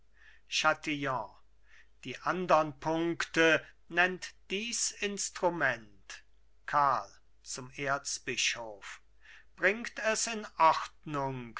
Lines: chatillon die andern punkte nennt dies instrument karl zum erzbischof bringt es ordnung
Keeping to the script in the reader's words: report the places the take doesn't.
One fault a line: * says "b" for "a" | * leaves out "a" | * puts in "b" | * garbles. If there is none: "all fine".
* puts in "in"